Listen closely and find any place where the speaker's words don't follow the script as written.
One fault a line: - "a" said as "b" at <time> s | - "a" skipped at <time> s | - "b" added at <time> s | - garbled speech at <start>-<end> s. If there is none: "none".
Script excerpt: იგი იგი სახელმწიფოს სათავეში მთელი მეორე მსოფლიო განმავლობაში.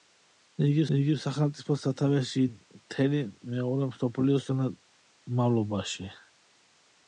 none